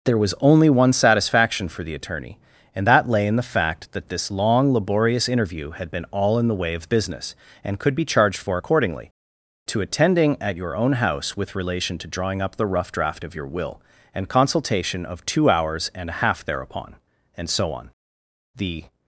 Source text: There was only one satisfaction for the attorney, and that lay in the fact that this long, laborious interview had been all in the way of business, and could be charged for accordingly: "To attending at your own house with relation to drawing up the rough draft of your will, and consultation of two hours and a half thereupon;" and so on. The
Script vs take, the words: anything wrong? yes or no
no